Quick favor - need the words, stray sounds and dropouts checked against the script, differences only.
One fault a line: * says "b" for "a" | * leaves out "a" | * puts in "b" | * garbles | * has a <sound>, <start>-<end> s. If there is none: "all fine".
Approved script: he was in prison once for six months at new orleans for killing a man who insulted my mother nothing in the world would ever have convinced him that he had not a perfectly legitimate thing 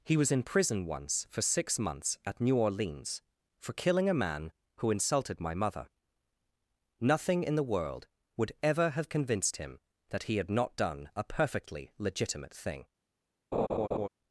* puts in "done"
* has a laugh, 13.5-14.1 s